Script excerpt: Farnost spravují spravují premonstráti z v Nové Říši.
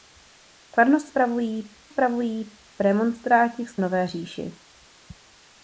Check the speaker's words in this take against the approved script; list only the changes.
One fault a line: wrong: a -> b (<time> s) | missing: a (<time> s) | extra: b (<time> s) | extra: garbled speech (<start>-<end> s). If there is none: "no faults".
no faults